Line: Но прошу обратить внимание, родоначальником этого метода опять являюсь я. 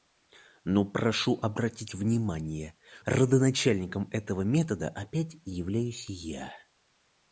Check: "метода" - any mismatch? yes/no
no